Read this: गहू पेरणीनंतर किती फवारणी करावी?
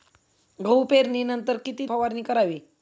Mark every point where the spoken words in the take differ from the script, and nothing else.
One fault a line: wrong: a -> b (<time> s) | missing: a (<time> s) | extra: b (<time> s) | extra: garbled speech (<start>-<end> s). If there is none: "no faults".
no faults